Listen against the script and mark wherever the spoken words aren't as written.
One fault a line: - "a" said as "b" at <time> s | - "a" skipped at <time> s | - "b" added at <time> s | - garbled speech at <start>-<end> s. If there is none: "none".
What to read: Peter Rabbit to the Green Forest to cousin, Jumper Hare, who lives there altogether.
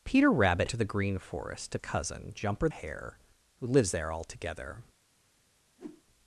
none